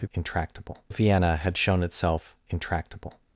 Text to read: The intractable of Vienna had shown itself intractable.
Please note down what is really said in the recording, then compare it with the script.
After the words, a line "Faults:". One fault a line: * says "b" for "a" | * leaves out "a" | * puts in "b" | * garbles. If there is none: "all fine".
The intractable of Vienna had shown itself intractable.
Faults:
all fine